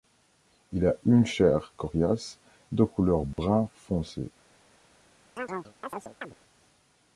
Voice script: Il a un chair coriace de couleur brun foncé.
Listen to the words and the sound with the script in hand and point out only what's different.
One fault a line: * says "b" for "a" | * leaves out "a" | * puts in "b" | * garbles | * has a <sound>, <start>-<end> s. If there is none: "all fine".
* says "une" for "un"
* has a dropout, 3.3-3.4 s
* has a chirp, 5.4-6.4 s